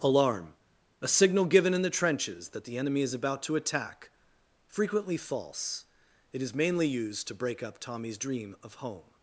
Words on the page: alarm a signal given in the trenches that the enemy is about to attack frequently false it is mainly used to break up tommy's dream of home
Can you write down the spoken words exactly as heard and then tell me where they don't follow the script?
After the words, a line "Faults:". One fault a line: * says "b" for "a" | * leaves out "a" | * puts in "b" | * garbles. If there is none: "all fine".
alarm a signal given in the trenches that the enemy is about to attack frequently false it is mainly used to break up tommy's dream of home
Faults:
all fine